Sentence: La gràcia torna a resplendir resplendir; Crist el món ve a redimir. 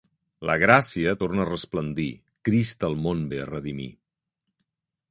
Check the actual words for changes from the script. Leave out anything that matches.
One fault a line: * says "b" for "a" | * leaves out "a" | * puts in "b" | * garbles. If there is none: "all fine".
* leaves out "resplendir"